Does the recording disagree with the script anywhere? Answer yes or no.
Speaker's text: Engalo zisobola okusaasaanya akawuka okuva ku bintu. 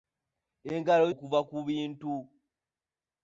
yes